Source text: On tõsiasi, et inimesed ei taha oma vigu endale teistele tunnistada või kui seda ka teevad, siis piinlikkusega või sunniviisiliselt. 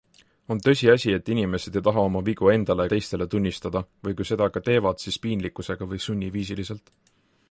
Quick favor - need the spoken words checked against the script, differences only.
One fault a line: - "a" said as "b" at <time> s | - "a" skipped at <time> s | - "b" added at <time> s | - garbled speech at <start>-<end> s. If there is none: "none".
none